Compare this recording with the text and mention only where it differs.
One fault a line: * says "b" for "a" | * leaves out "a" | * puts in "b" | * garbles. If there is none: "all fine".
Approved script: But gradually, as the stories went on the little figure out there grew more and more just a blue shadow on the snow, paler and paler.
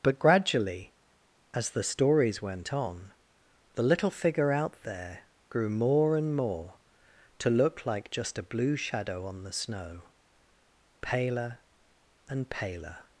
* puts in "to look like"